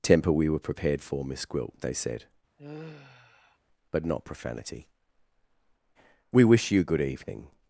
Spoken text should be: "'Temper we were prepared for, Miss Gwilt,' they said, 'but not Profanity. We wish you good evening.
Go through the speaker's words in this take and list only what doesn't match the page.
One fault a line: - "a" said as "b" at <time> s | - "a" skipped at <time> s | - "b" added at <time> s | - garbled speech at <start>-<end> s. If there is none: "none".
none